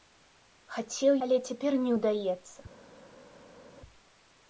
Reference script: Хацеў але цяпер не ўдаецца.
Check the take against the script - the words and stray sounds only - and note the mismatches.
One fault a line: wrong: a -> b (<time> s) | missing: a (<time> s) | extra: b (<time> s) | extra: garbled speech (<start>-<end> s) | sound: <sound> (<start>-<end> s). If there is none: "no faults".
no faults